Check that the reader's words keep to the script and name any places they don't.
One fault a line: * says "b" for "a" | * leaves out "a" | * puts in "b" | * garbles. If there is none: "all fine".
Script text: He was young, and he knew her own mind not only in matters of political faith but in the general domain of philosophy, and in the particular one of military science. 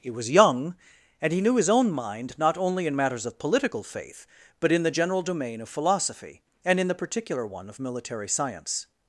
* says "his" for "her"